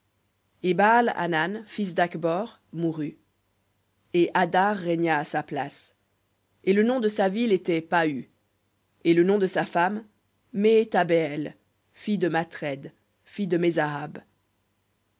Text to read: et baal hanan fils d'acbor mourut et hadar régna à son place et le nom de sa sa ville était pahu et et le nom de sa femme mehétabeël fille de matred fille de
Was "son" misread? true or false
true